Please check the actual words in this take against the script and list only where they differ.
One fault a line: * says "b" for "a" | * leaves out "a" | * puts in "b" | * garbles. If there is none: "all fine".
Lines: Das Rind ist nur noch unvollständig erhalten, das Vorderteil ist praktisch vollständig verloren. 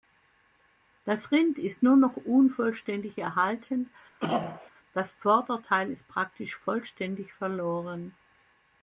all fine